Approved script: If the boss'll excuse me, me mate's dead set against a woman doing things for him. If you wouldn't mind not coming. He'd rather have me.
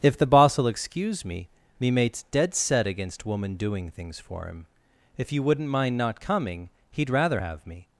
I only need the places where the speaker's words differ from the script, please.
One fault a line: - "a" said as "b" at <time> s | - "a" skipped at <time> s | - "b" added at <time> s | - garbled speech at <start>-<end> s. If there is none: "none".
- "a" skipped at 3.2 s